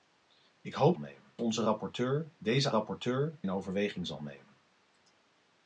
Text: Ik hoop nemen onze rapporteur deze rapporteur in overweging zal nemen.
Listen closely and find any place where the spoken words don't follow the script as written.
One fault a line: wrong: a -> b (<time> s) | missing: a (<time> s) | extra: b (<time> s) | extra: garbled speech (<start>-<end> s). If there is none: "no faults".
no faults